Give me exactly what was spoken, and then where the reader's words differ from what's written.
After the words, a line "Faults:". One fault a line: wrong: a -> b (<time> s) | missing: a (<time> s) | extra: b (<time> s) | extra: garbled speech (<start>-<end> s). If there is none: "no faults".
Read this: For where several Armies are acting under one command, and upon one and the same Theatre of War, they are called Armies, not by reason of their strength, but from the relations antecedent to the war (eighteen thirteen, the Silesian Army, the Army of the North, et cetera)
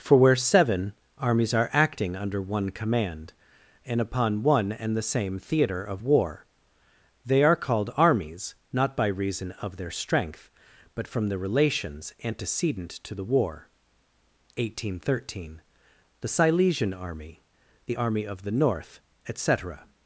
For where seven Armies are acting under one command, and upon one and the same Theatre of War, they are called Armies, not by reason of their strength, but from the relations antecedent to the war (eighteen thirteen, the Silesian Army, the Army of the North, et cetera)
Faults:
wrong: several -> seven (0.3 s)